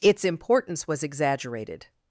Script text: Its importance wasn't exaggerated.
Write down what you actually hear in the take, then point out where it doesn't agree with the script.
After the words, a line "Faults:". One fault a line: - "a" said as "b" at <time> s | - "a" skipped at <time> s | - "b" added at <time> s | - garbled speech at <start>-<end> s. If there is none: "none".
Its importance was exaggerated.
Faults:
- "wasn't" said as "was" at 0.9 s